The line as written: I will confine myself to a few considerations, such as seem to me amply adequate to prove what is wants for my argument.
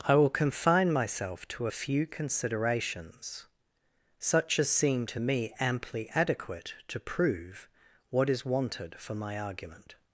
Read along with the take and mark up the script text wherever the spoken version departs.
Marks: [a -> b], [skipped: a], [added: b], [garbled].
I will confine myself to a few considerations, such as seem to me amply adequate to prove what is [wants -> wanted] for my argument.